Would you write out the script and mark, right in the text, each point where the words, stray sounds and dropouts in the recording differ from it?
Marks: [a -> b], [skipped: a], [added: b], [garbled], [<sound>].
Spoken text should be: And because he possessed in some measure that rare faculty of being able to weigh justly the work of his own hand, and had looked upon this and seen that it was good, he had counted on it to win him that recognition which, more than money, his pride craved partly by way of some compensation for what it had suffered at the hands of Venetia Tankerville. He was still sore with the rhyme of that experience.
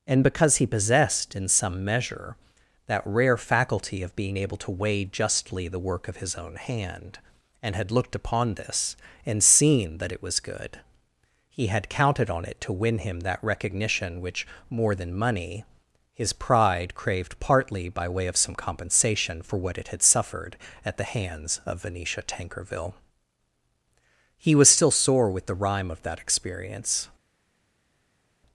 And because he possessed in some measure that rare faculty of being able to weigh justly the work of his own hand, and had looked upon this and seen that it was good, he had counted on it to win him that recognition which, more than money, his pride craved partly by way of some compensation for what it had suffered at the hands of Venetia Tankerville. He was still sore with the rhyme of that experience.